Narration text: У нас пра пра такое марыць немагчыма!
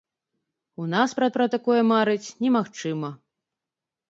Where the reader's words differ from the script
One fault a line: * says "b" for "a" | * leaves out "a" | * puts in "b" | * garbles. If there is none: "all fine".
all fine